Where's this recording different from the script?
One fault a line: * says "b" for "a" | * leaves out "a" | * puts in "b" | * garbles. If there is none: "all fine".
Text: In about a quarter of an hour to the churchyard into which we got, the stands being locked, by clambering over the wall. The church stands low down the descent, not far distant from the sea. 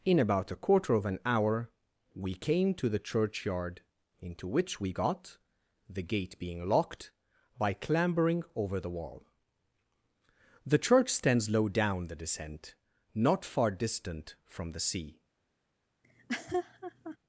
* puts in "we came"
* says "gate" for "stands"